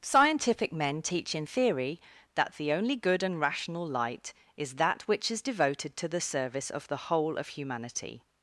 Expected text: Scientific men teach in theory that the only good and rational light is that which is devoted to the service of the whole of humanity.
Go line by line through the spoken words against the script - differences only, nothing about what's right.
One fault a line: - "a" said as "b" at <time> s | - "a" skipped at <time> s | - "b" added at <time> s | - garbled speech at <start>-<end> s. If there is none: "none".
none